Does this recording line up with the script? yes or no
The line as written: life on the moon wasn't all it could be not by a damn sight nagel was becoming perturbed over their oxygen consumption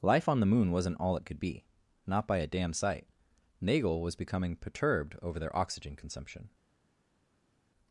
yes